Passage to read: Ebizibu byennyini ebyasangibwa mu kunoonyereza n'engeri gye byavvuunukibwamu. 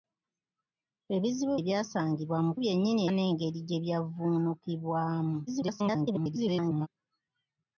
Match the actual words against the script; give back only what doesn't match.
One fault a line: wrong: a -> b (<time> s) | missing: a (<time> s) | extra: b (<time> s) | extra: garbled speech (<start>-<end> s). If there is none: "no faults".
missing: byennyini (1.6 s)
wrong: kunoonyereza -> byennyini (2.6 s)
extra: garbled speech (5.5-6.9 s)